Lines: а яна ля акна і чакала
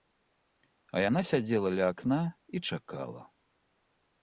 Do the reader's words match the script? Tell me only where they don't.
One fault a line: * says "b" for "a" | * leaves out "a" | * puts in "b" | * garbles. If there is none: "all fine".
* puts in "сядзела"